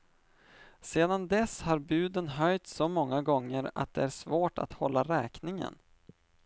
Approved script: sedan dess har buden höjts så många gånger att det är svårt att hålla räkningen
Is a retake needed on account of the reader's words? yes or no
no